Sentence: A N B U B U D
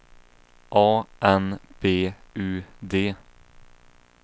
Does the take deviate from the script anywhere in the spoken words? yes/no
yes